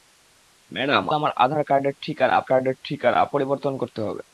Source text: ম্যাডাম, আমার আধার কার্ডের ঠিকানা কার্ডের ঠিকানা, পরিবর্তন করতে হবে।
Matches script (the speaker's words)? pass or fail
pass